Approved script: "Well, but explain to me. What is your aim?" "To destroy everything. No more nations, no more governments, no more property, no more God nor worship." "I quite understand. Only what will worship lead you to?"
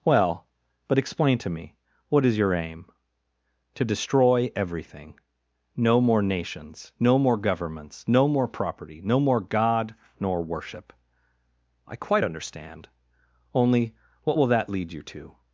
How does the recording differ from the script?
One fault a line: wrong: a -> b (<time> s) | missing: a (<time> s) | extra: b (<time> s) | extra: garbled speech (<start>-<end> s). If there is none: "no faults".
wrong: worship -> that (14.5 s)